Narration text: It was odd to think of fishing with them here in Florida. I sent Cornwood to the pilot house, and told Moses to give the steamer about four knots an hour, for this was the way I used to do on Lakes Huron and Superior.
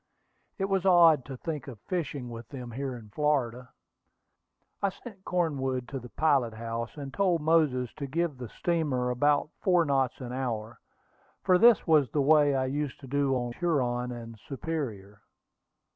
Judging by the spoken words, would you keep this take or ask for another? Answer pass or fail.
fail